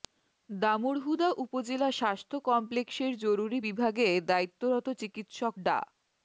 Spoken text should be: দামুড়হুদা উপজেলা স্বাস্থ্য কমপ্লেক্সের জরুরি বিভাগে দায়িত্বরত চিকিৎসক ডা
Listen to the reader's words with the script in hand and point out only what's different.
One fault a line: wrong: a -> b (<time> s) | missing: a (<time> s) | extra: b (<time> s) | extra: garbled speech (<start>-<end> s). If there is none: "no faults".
no faults